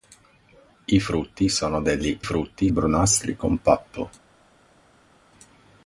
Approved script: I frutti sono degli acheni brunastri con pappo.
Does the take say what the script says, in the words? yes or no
no